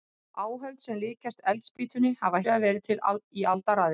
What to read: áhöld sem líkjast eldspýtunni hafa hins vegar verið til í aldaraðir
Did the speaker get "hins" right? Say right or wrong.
wrong